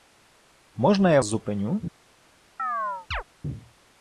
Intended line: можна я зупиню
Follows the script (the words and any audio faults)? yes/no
no